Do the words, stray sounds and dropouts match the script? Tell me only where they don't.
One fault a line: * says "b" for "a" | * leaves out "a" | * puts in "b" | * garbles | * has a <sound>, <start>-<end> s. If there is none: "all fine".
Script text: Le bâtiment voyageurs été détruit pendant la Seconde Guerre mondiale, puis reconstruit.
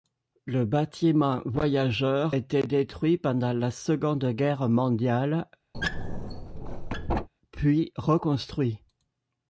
* has a squeak, 5.7-7.3 s